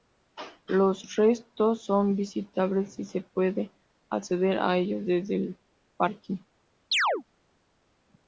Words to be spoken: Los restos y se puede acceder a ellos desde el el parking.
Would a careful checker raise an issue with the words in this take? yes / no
yes